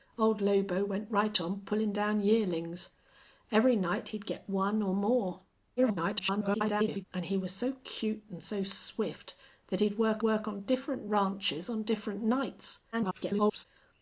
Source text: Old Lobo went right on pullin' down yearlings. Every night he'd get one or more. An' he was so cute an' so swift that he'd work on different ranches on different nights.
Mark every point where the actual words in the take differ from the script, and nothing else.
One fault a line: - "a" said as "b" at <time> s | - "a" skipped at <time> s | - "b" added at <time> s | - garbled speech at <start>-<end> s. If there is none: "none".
- garbled speech at 5.8-7.1 s
- "work" added at 10.2 s
- garbled speech at 12.9-13.6 s